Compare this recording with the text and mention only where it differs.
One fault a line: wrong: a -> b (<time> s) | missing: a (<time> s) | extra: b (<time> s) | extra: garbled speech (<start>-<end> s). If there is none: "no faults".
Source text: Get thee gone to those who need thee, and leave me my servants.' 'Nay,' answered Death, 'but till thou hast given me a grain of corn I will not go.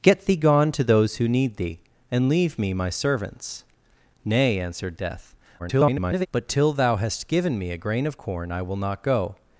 extra: garbled speech (5.6-6.3 s)